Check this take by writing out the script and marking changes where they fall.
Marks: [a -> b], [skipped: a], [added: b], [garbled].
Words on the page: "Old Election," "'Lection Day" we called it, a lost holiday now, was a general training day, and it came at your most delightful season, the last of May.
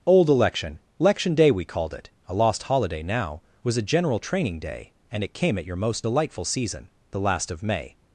"Old Election," "'Lection Day" we called it, a lost holiday now, was a general training day, and it came at your most delightful season, the last of May.